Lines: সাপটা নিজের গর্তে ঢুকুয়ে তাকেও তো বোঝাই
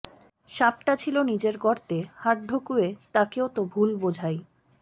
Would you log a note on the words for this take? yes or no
yes